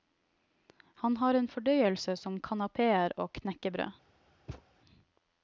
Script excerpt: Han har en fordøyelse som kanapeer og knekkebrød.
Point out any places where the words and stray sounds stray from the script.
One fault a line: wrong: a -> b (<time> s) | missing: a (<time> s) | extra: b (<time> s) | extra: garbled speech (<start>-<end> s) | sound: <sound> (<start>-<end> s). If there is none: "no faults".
sound: thud (4.5-4.7 s)